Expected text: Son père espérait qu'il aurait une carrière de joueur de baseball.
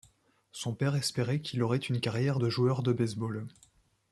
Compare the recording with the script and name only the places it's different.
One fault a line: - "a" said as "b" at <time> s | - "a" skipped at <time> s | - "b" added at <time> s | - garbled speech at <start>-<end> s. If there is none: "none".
none